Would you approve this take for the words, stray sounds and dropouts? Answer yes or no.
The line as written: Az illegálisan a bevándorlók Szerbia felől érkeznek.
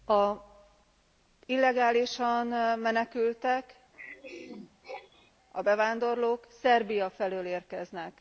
no